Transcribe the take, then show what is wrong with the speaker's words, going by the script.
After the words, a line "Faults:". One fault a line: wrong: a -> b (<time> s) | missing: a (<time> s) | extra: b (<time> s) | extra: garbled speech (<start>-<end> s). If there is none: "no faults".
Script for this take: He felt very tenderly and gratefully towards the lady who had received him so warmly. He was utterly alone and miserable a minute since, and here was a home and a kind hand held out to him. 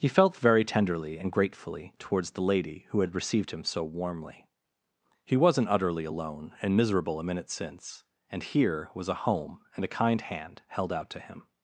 He felt very tenderly and gratefully towards the lady who had received him so warmly. He wasn't utterly alone and miserable a minute since, and here was a home and a kind hand held out to him.
Faults:
wrong: was -> wasn't (5.4 s)